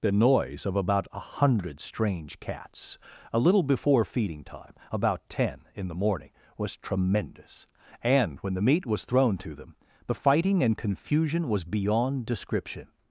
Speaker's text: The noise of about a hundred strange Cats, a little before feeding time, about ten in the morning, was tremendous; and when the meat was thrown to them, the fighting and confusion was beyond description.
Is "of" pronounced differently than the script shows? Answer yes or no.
no